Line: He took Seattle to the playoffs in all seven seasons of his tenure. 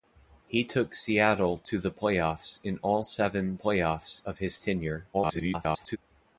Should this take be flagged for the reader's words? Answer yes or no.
yes